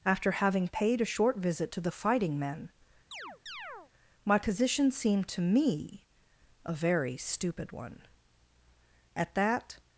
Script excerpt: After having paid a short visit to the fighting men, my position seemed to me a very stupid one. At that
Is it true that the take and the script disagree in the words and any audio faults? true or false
true